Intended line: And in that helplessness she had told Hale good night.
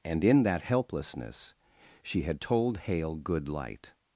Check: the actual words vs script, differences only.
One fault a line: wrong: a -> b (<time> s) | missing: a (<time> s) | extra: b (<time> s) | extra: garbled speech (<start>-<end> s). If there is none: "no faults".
wrong: night -> light (3.5 s)